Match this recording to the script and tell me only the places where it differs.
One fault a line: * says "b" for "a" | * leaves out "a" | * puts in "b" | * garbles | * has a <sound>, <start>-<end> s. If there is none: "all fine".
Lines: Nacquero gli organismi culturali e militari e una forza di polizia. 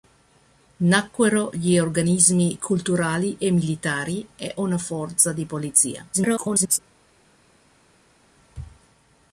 * garbles